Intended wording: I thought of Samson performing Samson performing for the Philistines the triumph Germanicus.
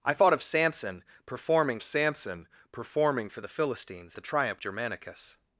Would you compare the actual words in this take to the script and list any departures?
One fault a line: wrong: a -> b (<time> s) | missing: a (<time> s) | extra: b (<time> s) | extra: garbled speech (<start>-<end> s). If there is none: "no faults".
no faults